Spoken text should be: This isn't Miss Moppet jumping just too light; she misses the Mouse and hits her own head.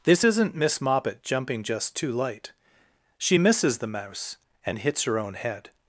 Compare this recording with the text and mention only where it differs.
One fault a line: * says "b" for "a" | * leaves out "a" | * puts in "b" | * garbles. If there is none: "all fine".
all fine